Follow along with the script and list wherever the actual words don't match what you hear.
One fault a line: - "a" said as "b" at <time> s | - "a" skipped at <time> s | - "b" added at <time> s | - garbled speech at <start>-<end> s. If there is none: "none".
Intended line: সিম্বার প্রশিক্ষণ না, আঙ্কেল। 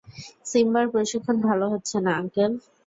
- "ভালো হচ্ছে" added at 1.5 s